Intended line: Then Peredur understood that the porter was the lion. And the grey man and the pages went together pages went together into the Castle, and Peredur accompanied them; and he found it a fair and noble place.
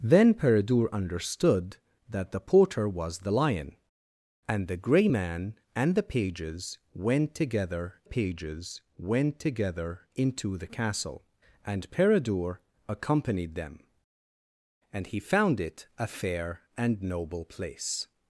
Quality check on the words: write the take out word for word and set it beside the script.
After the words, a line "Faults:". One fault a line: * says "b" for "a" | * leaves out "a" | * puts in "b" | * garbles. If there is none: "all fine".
Then Peredur understood that the porter was the lion. And the grey man and the pages went together pages went together into the Castle, and Peredur accompanied them; and he found it a fair and noble place.
Faults:
all fine